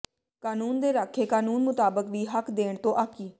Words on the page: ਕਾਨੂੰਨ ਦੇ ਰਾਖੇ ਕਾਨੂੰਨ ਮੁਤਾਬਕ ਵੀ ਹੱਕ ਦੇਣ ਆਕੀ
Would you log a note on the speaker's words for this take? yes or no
yes